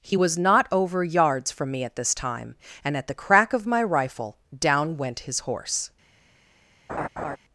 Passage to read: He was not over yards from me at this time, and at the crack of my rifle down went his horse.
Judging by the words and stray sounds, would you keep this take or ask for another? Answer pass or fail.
fail